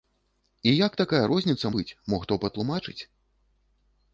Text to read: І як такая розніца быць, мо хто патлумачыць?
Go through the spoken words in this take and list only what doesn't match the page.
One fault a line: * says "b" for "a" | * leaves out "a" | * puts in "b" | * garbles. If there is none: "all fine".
all fine